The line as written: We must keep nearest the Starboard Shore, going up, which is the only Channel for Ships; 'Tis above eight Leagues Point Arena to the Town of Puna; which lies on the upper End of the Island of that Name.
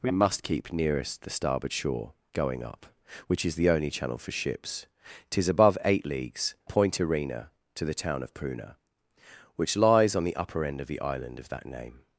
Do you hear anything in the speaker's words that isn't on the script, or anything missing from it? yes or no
no